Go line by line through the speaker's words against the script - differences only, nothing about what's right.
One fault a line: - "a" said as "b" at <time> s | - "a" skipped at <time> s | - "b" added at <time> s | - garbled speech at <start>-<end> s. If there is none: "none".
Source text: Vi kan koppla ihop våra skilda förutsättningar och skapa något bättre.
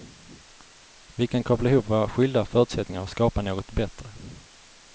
none